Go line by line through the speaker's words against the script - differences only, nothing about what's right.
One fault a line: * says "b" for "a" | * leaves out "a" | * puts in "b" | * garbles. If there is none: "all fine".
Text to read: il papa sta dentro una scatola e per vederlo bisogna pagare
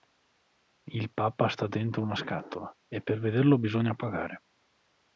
all fine